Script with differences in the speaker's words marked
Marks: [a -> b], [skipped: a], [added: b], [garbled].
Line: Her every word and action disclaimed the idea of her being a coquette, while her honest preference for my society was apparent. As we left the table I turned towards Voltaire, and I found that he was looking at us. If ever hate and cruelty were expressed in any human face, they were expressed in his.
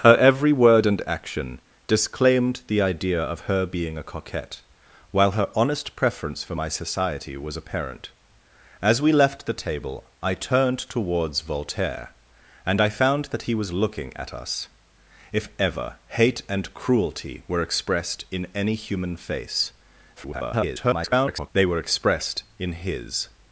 Her every word and action disclaimed the idea of her being a coquette, while her honest preference for my society was apparent. As we left the table I turned towards Voltaire, and I found that he was looking at us. If ever hate and cruelty were expressed in any human face, [garbled] they were expressed in his.